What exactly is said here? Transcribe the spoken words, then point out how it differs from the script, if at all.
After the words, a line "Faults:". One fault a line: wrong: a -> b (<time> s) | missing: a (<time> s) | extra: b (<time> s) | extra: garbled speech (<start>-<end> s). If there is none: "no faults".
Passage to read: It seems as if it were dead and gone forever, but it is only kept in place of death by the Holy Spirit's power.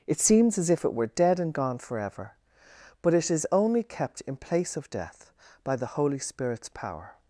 It seems as if it were dead and gone forever, but it is only kept in place of death by the Holy Spirit's power.
Faults:
no faults